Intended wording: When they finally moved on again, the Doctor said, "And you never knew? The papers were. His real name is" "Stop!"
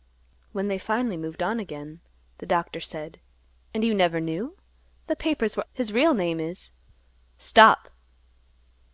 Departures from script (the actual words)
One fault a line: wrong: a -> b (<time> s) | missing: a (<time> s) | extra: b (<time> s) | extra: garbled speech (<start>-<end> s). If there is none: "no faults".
no faults